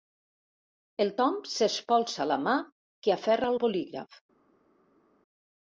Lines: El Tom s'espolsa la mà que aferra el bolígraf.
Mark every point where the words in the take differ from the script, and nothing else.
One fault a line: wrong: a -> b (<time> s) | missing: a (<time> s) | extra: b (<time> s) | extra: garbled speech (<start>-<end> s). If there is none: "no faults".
no faults